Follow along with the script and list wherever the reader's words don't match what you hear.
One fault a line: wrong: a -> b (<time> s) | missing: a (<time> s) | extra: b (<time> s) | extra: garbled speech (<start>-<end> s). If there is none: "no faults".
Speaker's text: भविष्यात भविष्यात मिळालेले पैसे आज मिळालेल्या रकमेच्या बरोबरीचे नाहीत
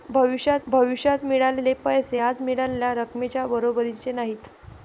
no faults